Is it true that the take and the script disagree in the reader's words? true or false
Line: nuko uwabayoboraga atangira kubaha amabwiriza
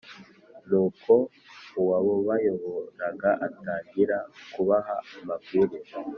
false